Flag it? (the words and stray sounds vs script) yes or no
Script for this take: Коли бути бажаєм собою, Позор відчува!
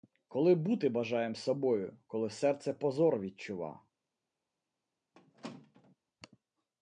yes